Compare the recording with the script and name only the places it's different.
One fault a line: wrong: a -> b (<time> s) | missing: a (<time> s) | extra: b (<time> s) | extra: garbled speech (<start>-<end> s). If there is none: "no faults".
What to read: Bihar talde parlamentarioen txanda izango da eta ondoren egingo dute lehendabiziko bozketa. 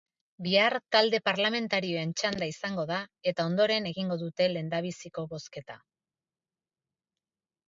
no faults